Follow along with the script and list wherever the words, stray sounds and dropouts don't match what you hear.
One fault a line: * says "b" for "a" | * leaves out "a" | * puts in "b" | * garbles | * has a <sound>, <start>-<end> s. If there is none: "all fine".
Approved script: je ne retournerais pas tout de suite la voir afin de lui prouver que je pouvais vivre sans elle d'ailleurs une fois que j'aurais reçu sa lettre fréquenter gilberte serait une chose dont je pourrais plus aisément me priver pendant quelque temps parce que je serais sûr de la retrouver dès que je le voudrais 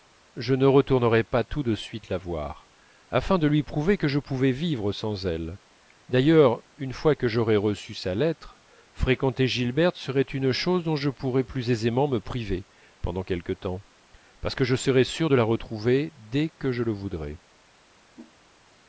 * has a whoosh, 18.1-18.3 s